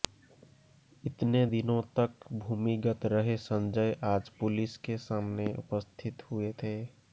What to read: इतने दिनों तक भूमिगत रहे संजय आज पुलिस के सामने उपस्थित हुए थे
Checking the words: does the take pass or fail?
pass